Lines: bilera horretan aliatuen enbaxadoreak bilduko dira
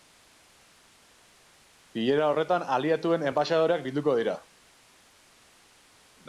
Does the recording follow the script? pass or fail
pass